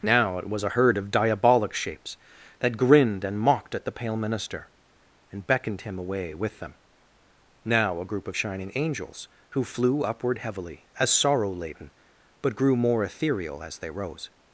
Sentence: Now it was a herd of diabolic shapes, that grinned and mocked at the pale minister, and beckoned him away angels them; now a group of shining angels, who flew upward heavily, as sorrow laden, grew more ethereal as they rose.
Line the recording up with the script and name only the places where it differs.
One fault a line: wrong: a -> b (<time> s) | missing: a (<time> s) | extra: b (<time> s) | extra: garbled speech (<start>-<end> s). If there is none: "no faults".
wrong: angels -> with (6.3 s)
extra: but (12.4 s)